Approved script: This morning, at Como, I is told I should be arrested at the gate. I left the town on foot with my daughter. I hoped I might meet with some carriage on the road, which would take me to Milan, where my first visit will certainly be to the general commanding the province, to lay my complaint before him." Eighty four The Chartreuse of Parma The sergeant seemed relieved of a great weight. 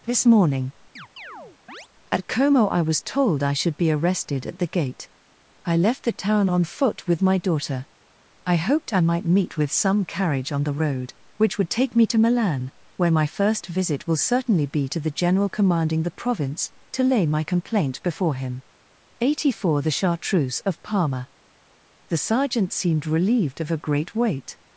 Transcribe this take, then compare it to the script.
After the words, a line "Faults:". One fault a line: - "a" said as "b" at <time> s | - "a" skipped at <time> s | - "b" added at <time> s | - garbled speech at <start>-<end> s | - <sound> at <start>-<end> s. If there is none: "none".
This morning, at Como, I was told I should be arrested at the gate. I left the town on foot with my daughter. I hoped I might meet with some carriage on the road, which would take me to Milan, where my first visit will certainly be to the general commanding the province, to lay my complaint before him." Eighty four The Chartreuse of Parma The sergeant seemed relieved of a great weight.
Faults:
- chirp at 1.0-1.9 s
- "is" said as "was" at 2.8 s